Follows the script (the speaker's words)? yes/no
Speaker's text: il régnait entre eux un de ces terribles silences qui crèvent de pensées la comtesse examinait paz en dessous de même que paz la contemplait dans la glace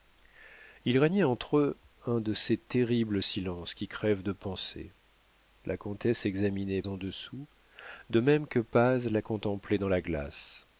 no